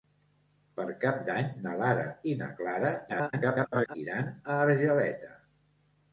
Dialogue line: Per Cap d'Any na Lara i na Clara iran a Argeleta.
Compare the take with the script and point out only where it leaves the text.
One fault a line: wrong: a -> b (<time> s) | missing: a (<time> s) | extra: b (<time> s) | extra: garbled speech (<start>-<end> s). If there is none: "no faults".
extra: garbled speech (3.1-4.0 s)